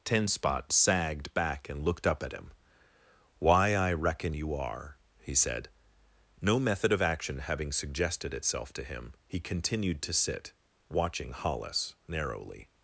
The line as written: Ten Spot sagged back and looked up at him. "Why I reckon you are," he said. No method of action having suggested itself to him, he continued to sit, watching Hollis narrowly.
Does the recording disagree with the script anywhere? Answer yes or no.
no